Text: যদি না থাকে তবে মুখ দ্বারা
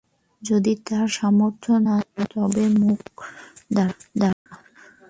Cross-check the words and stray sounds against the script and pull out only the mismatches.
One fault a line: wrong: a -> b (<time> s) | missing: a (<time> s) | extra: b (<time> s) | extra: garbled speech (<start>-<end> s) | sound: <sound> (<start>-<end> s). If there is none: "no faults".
extra: তার সামর্থ্য (0.9 s)
sound: dropout (4.3-4.5 s)